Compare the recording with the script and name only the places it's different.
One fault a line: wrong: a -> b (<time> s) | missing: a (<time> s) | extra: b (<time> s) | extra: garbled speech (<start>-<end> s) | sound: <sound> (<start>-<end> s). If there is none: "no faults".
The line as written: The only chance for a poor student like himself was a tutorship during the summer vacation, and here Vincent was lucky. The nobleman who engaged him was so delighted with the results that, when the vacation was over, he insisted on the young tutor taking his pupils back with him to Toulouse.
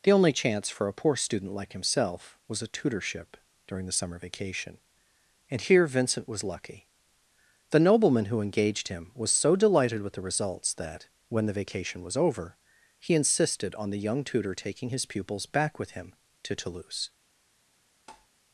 sound: tap (18.1-18.3 s)